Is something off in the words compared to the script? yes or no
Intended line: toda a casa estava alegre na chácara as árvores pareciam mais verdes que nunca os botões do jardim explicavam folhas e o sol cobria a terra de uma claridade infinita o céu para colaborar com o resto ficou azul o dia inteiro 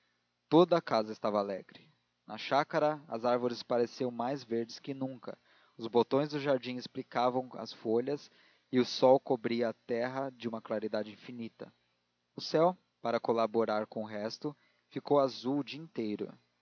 yes